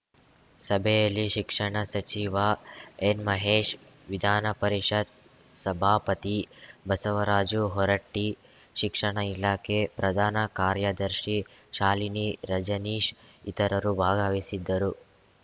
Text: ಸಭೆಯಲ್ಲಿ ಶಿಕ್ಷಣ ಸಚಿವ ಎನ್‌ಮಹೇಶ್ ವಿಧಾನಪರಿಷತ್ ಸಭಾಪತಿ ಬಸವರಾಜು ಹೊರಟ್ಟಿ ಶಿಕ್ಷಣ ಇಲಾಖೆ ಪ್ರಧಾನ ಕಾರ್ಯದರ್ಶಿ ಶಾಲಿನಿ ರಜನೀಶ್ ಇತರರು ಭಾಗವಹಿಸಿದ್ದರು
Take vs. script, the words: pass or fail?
pass